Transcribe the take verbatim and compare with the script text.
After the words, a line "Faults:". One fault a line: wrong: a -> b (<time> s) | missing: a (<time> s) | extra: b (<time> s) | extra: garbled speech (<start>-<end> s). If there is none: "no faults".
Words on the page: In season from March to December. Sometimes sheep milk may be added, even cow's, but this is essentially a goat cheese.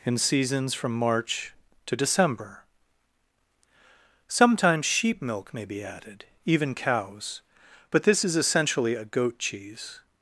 In seasons from March to December. Sometimes sheep milk may be added, even cow's, but this is essentially a goat cheese.
Faults:
wrong: season -> seasons (0.2 s)